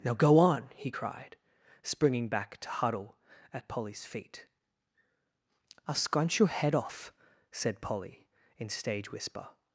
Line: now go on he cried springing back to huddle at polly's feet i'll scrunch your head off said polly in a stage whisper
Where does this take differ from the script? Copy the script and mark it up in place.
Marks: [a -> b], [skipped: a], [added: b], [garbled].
now go on he cried springing back to huddle at polly's feet i'll scrunch your head off said polly in [skipped: a] stage whisper